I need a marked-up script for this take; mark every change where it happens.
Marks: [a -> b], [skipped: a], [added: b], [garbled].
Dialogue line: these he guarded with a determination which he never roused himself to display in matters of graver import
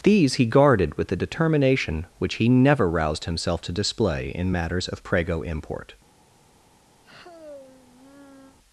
these he guarded with a determination which he never roused himself to display in matters of [graver -> prego] import